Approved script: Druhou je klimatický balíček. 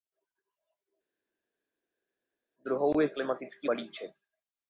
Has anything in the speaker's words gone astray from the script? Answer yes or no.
no